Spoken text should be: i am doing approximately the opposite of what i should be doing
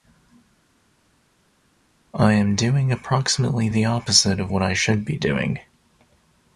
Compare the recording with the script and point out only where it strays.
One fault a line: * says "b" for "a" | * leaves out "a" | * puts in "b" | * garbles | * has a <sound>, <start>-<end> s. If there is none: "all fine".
all fine